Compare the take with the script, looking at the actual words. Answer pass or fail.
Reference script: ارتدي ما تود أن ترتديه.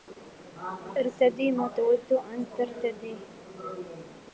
pass